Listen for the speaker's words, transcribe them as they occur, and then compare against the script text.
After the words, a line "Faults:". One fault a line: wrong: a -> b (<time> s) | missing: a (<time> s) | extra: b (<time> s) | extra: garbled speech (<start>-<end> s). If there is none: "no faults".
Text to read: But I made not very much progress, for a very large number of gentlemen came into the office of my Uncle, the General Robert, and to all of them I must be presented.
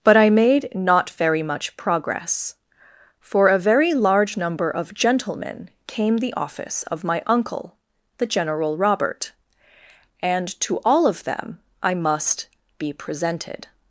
But I made not very much progress, for a very large number of gentlemen came the office of my Uncle, the General Robert, and to all of them I must be presented.
Faults:
missing: into (6.2 s)